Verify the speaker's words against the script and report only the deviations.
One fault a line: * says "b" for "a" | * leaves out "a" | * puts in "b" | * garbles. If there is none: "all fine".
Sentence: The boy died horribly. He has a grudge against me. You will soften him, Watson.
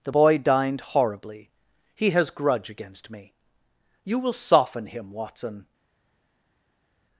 * says "dined" for "died"
* leaves out "a"